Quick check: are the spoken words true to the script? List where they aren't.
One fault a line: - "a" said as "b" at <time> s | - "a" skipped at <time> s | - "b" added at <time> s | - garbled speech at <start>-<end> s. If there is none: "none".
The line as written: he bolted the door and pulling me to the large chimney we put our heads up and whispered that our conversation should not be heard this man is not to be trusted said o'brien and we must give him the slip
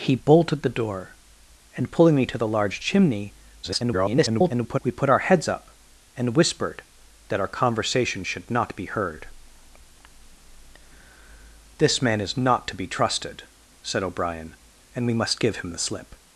- garbled speech at 3.6-4.8 s